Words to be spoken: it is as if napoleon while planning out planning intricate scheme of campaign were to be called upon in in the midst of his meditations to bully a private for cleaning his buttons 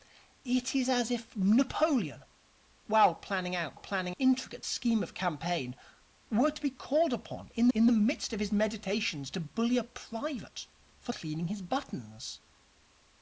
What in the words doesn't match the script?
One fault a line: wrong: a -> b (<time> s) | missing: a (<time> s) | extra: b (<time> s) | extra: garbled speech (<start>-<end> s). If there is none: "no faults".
no faults